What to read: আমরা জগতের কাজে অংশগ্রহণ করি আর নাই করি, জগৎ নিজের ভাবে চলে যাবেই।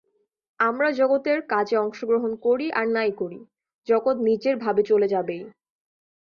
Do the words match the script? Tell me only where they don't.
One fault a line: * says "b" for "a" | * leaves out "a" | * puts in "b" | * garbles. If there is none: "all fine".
all fine